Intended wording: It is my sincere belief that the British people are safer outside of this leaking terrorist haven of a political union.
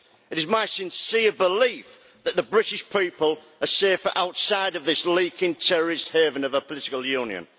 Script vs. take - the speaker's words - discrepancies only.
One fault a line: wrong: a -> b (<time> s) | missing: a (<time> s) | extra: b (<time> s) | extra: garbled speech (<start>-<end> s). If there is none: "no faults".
no faults